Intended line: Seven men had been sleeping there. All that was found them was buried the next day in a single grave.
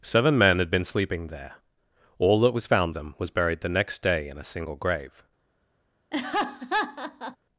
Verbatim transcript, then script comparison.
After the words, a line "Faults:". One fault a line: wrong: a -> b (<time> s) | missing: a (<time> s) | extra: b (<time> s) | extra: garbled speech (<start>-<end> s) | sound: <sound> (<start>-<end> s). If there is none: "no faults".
Seven men had been sleeping there. All that was found them was buried the next day in a single grave.
Faults:
sound: laugh (6.1-7.4 s)